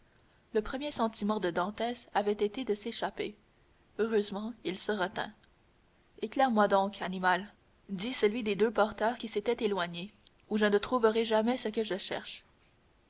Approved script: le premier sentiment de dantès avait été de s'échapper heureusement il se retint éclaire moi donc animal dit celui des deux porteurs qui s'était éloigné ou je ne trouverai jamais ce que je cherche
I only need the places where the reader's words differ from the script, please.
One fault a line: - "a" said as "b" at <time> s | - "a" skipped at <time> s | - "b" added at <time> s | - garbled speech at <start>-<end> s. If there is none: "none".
none